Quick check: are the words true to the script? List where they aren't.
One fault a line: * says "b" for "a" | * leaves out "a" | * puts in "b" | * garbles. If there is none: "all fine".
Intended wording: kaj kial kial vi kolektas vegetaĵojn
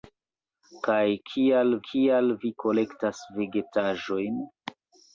all fine